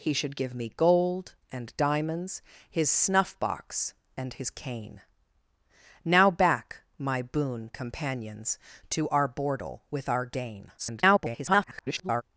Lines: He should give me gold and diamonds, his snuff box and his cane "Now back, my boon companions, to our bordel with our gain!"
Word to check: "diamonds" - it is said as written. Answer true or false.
true